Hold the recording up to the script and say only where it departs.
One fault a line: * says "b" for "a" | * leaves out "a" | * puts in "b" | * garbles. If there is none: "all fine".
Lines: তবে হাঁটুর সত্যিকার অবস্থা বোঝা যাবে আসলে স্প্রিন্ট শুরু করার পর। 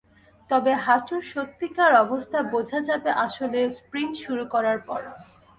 all fine